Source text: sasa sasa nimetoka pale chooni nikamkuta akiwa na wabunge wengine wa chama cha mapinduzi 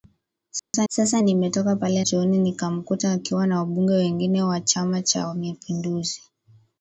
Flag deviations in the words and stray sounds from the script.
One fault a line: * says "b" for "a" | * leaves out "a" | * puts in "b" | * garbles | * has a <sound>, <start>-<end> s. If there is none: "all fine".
* has a dropout, 0.6-0.7 s